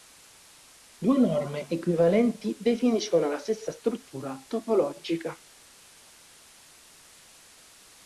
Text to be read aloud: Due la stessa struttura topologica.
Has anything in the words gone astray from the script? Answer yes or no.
yes